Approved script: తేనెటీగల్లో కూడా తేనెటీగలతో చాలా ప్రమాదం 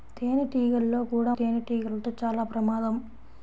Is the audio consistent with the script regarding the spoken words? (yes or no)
yes